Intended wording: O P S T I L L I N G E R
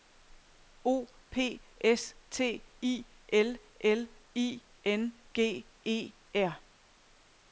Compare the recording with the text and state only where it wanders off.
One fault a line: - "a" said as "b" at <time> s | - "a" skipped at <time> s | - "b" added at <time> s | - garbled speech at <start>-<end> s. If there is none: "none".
none